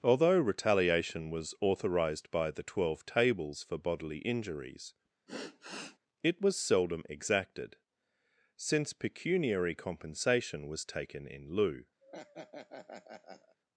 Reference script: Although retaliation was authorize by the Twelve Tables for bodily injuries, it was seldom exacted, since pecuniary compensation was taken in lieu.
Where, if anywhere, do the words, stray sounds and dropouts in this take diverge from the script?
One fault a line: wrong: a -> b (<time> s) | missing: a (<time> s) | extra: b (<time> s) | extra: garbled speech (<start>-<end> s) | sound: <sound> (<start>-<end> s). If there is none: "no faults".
wrong: authorize -> authorized (1.6 s)
sound: sigh (5.3-6.0 s)
sound: laugh (12.0-13.6 s)